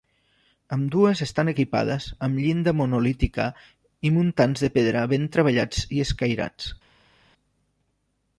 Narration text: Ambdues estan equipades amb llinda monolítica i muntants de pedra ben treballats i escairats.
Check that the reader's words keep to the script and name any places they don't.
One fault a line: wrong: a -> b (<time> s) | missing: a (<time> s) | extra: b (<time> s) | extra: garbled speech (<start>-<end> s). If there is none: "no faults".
no faults